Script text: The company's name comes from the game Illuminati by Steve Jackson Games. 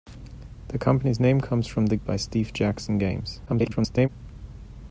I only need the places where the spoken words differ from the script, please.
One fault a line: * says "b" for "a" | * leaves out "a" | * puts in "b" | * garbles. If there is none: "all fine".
* leaves out "game Illuminati"
* garbles